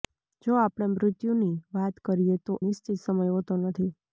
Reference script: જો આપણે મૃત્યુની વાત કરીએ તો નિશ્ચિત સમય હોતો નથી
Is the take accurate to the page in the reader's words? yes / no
yes